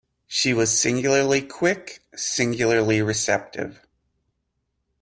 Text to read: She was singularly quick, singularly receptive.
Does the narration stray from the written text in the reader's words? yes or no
no